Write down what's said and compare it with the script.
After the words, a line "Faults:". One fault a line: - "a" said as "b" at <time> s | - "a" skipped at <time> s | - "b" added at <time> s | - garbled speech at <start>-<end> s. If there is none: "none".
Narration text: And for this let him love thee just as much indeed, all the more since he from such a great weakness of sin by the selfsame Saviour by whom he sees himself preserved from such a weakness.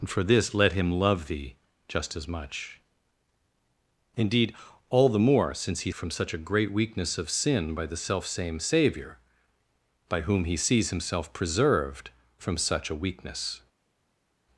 And for this let him love thee just as much indeed, all the more since he from such a great weakness of sin by the selfsame Saviour by whom he sees himself preserved from such a weakness.
Faults:
none